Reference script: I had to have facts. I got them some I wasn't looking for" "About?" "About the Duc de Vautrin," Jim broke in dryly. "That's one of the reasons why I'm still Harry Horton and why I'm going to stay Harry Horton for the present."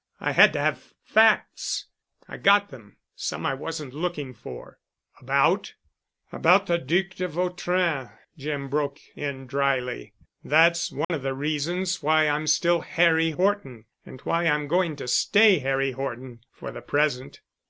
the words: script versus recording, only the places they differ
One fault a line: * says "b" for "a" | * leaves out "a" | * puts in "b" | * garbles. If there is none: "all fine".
all fine